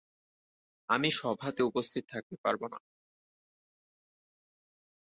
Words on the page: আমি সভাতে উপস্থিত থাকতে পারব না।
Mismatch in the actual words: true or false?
false